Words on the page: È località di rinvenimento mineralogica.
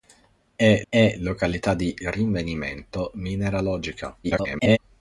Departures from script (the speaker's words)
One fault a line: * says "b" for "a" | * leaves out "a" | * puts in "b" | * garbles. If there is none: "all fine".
* puts in "è"
* garbles